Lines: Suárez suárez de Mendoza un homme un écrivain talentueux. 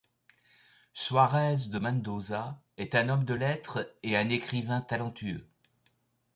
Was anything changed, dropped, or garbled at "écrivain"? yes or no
no